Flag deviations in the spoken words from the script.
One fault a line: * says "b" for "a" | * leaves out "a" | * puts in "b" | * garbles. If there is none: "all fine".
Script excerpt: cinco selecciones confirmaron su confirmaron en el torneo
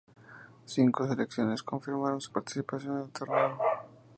* says "participación" for "confirmaron"